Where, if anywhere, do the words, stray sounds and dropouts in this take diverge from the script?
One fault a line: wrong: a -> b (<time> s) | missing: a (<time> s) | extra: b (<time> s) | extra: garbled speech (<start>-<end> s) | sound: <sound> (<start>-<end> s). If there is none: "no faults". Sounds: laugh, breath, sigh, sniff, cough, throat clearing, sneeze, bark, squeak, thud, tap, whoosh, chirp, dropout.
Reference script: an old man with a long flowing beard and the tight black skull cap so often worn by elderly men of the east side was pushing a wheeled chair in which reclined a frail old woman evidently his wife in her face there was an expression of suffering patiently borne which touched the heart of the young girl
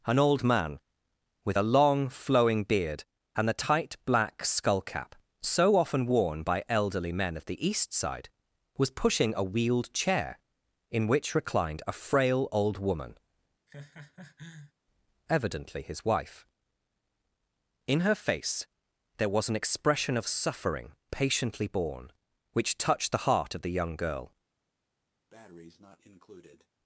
sound: laugh (13.7-14.7 s)
sound: breath (25.3-26.7 s)